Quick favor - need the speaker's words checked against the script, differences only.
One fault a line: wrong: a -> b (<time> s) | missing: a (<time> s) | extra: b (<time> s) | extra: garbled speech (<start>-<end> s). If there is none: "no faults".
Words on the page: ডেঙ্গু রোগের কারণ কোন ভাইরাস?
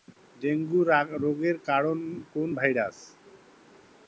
no faults